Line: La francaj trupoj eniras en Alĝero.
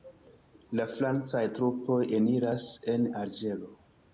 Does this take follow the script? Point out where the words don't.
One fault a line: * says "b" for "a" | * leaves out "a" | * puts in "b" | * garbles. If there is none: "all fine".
all fine